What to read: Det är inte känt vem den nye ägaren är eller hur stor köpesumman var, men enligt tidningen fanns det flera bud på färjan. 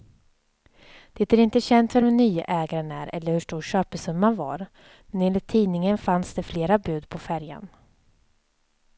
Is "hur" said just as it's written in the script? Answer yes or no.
yes